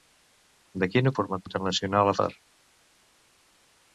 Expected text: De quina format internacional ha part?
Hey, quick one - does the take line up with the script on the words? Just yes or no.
yes